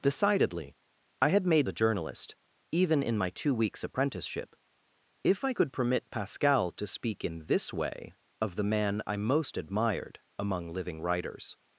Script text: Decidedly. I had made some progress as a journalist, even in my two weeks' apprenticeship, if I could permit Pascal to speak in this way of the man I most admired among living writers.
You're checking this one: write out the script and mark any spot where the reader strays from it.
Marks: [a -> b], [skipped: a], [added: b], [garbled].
Decidedly. I had made [skipped: some progress as] a journalist, even in my two weeks' apprenticeship, if I could permit Pascal to speak in this way of the man I most admired among living writers.